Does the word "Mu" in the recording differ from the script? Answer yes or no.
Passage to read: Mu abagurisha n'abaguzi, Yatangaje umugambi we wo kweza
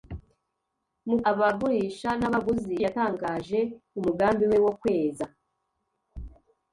no